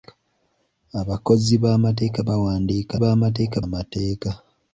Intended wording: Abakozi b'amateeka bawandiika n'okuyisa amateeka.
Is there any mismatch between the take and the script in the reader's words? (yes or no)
yes